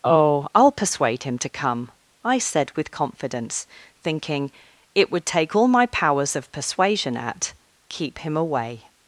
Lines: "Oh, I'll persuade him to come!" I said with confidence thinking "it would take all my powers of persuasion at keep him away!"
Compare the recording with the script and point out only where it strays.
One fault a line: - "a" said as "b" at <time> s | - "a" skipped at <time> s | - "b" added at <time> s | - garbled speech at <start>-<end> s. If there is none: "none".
none